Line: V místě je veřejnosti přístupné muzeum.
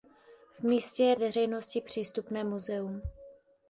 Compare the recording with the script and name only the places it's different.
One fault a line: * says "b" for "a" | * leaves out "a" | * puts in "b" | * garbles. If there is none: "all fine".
all fine